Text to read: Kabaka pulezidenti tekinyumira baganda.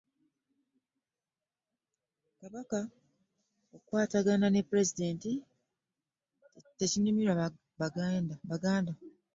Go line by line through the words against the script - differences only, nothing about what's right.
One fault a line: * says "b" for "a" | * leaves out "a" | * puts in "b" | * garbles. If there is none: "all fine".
* puts in "okukwatagana ne"